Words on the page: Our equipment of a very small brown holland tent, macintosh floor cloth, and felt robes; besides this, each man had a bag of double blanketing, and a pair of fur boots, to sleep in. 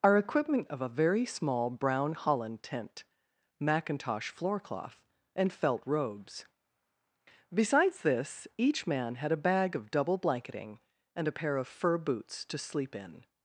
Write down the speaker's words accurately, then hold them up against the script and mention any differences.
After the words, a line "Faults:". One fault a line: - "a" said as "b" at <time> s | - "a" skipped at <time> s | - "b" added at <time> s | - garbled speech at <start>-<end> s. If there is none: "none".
Our equipment of a very small brown holland tent, macintosh floor cloth, and felt robes; besides this, each man had a bag of double blanketing, and a pair of fur boots, to sleep in.
Faults:
none